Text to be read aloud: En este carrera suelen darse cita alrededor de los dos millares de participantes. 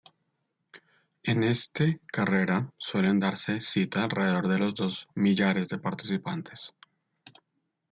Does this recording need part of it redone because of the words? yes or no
no